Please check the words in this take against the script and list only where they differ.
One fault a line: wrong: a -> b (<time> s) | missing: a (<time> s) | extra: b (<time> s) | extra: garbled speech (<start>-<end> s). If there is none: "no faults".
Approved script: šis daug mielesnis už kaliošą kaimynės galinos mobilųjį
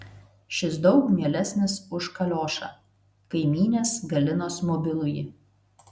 no faults